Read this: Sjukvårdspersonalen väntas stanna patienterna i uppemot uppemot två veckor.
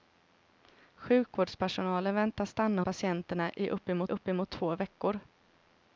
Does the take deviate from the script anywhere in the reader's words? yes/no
no